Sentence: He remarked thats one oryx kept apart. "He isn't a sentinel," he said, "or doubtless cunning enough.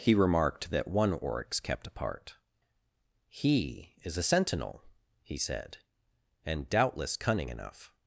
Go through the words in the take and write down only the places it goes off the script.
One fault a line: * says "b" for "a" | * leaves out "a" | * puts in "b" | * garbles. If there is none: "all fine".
* says "that" for "thats"
* says "is" for "isn't"
* says "and" for "or"